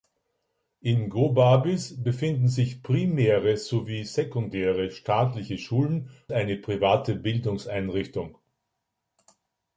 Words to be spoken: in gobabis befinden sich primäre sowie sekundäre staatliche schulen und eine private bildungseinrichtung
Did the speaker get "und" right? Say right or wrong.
wrong